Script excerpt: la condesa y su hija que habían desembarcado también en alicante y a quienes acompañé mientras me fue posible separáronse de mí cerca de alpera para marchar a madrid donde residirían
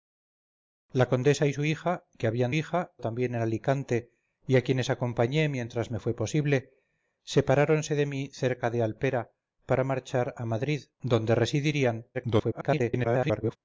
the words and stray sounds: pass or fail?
fail